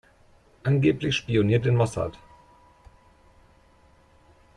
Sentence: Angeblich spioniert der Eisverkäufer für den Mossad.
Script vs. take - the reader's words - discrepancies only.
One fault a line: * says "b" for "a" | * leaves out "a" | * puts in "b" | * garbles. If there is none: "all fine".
* leaves out "der Eisverkäufer für"